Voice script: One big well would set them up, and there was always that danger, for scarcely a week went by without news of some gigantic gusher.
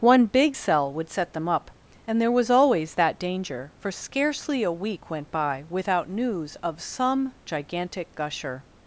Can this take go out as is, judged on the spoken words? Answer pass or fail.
fail